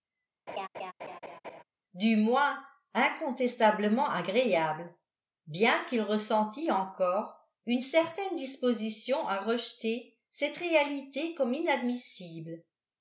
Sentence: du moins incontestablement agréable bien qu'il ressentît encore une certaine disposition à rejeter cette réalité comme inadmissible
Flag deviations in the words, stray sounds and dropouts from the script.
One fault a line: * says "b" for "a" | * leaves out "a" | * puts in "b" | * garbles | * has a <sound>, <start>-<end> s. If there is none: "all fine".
* has a laugh, 0.5-1.6 s